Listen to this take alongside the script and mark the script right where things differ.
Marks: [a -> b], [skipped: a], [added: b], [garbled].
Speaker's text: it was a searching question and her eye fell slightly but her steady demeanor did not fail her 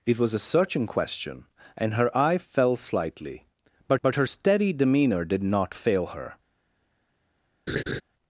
it was a searching question and her eye fell slightly but [added: but] her steady demeanor did not fail her